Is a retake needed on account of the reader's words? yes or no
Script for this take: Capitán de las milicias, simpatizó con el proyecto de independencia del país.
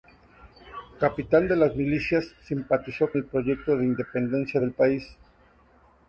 yes